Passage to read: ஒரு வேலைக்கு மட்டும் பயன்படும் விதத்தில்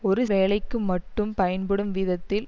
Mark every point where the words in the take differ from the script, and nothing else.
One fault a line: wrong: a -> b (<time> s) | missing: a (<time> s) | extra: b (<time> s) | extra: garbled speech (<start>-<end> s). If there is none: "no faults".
no faults